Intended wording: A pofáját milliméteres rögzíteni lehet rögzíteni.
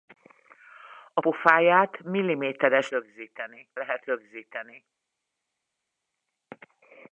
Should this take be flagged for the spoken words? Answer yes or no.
no